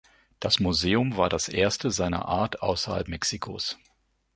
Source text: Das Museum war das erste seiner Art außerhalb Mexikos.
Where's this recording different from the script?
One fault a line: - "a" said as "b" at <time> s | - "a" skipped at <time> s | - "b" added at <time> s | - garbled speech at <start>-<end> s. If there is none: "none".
none